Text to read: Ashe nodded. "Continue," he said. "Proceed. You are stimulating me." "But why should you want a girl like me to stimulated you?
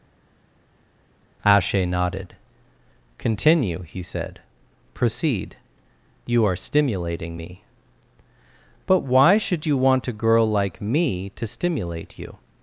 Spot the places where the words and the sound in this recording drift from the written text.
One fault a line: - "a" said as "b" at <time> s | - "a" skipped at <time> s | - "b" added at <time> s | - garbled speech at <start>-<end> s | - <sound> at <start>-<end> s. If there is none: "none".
- "stimulated" said as "stimulate" at 11.5 s